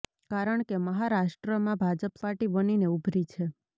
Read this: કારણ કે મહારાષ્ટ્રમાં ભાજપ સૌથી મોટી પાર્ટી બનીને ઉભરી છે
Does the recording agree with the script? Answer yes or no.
no